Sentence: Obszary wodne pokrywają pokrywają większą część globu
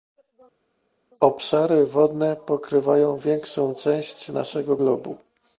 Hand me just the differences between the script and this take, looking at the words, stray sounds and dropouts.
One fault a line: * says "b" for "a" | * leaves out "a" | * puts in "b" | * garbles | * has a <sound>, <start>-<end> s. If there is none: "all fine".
* leaves out "pokrywają"
* puts in "naszego"